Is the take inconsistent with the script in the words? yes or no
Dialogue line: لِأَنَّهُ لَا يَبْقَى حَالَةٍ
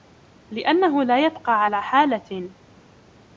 yes